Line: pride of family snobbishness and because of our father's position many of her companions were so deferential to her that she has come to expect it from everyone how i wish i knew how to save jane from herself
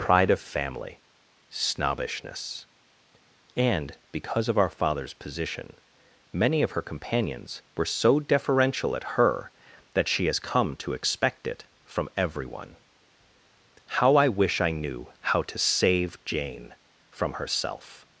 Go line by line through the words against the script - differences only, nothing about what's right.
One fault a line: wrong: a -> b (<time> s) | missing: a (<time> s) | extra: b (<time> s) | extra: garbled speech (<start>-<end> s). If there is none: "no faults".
wrong: to -> at (8.9 s)